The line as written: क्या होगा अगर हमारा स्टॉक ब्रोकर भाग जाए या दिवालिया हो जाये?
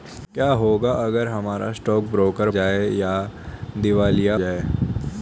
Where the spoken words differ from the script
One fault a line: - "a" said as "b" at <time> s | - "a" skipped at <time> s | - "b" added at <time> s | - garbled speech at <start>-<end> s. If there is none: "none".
- "भाग" skipped at 2.5 s
- "हो" skipped at 4.3 s